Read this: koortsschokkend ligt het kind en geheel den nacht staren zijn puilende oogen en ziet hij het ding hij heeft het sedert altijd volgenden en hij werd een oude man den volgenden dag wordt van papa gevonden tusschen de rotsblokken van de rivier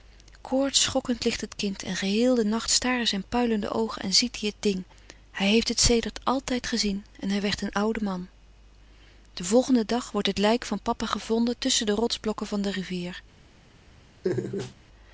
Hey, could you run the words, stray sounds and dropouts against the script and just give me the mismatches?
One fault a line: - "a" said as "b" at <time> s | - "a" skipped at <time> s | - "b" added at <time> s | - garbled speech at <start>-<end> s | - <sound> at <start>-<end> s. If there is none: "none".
- "volgenden" said as "gezien" at 6.7 s
- "het lijk" added at 10.3 s
- laugh at 14.2-14.7 s